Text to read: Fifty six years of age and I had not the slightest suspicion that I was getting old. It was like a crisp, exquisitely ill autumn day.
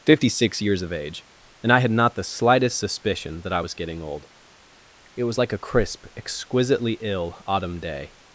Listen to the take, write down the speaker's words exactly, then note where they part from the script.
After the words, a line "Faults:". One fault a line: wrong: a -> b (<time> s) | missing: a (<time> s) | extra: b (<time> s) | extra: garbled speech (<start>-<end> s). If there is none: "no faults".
Fifty six years of age and I had not the slightest suspicion that I was getting old. It was like a crisp, exquisitely ill autumn day.
Faults:
no faults